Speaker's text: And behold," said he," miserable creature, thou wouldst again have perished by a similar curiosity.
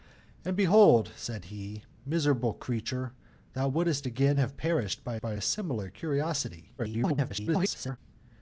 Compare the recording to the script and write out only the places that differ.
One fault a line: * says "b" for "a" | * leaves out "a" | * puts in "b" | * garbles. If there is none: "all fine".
* puts in "by"
* garbles